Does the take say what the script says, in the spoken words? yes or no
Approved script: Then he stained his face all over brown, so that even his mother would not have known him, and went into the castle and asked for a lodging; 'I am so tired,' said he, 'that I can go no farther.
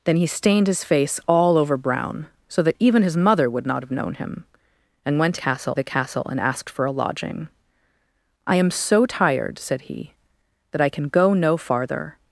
no